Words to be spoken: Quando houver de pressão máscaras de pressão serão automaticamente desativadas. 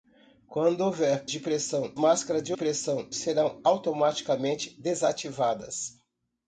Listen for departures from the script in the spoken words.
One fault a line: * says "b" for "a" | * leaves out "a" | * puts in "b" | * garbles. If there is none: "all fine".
all fine